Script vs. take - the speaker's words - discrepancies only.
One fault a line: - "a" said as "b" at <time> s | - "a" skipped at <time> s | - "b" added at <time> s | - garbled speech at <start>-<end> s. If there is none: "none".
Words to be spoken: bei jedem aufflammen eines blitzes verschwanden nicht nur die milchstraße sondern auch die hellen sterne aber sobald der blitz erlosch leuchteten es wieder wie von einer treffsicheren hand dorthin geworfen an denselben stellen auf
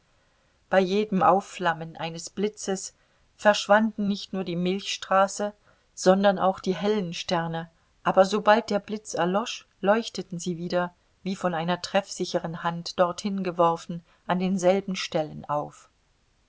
- "es" said as "sie" at 10.4 s